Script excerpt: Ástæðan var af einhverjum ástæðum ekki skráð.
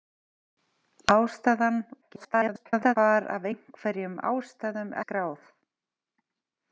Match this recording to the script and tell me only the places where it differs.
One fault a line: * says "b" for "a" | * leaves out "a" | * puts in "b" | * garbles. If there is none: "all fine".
* garbles
* leaves out "ekki"